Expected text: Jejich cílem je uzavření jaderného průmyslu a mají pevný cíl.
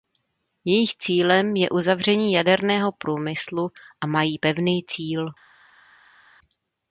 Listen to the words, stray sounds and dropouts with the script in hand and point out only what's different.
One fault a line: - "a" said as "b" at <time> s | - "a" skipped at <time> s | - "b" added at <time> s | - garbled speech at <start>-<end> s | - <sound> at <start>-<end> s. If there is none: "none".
none